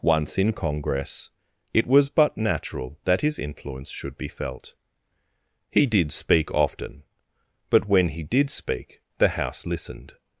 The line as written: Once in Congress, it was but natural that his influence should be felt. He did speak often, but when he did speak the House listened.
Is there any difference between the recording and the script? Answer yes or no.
no